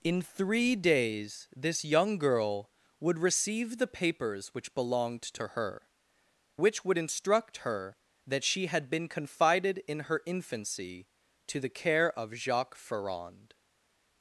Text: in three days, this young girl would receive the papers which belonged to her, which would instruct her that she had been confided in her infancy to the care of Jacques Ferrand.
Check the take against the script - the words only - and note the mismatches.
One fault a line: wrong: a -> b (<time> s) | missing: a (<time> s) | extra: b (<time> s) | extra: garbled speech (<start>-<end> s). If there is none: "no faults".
no faults